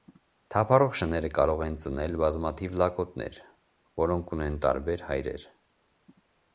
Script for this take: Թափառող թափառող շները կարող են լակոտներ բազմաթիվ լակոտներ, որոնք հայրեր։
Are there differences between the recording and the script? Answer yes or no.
yes